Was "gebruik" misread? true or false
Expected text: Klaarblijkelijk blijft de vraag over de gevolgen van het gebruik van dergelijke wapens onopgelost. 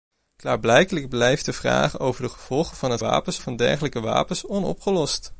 true